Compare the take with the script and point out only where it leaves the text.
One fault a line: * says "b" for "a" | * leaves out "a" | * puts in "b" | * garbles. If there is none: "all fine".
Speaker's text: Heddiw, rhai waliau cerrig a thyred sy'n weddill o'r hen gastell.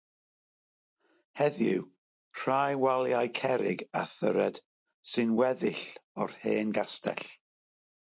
all fine